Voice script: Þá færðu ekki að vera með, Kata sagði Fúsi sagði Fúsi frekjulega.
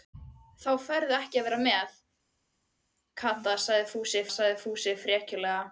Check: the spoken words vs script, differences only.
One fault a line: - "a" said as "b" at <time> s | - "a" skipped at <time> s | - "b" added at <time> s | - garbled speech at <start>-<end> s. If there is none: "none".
none